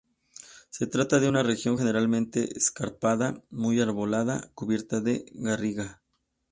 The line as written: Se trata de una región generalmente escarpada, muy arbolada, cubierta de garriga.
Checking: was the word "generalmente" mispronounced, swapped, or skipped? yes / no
no